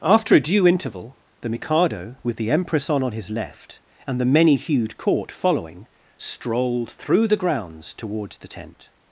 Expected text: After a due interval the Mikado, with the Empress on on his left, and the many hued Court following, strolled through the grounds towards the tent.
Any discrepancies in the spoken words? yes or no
no